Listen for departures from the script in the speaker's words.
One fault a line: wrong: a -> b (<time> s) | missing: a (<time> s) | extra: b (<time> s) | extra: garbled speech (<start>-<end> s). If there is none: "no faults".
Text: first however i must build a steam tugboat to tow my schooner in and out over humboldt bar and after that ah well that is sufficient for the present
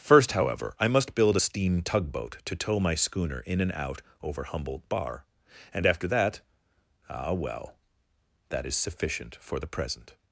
no faults